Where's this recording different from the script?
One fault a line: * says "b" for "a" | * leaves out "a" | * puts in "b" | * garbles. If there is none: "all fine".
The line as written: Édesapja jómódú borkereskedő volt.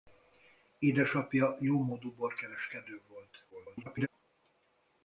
* garbles